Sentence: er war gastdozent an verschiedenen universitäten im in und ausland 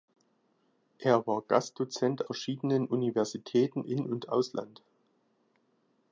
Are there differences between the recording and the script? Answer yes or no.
yes